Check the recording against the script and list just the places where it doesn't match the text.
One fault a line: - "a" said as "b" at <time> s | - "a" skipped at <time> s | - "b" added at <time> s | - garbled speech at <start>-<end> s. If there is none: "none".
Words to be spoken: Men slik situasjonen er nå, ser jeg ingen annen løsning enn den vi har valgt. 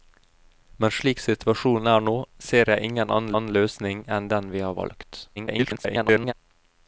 - "annen" added at 3.4 s
- garbled speech at 5.4-6.3 s